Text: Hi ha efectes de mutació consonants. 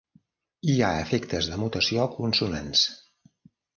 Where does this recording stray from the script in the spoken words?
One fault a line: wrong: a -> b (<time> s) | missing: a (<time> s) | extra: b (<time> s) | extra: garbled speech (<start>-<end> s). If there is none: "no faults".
no faults